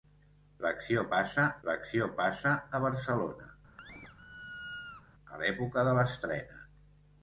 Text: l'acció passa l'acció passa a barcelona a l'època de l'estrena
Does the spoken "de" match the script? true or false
true